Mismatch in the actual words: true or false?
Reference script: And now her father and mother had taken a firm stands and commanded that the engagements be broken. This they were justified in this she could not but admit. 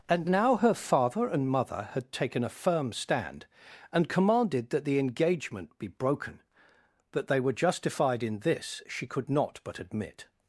true